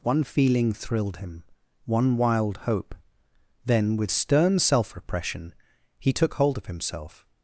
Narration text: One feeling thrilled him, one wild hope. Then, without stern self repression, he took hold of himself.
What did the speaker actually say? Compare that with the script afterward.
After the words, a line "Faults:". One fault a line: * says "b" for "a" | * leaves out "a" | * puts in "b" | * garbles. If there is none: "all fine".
One feeling thrilled him, one wild hope. Then, with stern self repression, he took hold of himself.
Faults:
* says "with" for "without"